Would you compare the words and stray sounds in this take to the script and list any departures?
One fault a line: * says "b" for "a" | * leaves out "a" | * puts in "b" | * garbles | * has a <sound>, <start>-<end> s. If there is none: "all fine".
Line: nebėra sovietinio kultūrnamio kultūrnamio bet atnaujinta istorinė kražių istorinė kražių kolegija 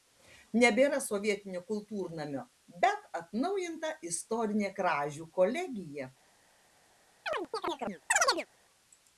* leaves out "kultūrnamio"
* leaves out "istorinė kražių"
* has a chirp, 7.3-8.5 s